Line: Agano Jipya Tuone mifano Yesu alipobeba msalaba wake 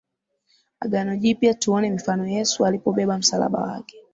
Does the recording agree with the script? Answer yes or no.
yes